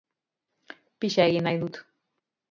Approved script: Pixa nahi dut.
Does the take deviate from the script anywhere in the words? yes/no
yes